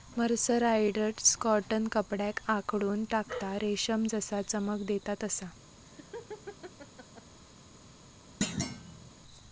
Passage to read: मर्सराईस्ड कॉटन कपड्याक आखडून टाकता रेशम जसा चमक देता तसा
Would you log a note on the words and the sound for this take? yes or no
yes